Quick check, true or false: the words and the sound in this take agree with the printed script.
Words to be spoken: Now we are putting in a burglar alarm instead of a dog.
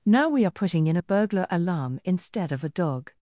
true